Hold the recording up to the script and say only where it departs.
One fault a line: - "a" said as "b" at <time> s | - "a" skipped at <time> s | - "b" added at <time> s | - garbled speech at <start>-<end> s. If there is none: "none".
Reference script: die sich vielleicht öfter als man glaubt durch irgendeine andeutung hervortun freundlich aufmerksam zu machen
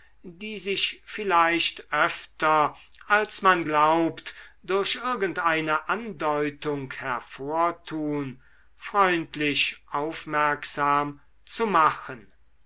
none